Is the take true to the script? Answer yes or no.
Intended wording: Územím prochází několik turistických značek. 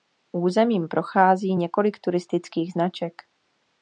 yes